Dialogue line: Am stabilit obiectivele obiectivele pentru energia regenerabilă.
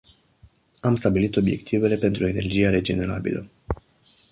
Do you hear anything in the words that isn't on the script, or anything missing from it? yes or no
yes